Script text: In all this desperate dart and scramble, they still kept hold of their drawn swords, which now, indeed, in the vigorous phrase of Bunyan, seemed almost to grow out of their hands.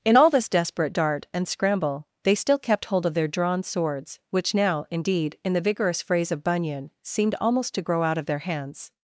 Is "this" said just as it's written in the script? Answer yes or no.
yes